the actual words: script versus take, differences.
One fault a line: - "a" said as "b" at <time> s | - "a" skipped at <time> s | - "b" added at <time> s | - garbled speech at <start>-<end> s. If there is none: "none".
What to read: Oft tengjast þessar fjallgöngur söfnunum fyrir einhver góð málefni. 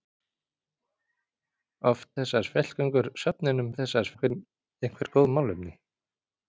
- "tengjast" skipped at 2.1 s
- "fyrir" said as "þessar" at 3.8 s